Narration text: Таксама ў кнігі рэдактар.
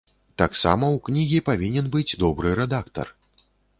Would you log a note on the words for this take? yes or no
yes